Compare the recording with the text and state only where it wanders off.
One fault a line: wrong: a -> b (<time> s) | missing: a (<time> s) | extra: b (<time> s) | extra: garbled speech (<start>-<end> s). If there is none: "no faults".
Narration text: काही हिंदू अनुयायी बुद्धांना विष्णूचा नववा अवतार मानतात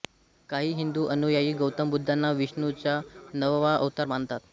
extra: गौतम (1.5 s)